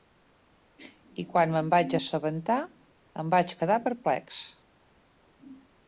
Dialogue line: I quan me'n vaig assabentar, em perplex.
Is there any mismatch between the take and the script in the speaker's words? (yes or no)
yes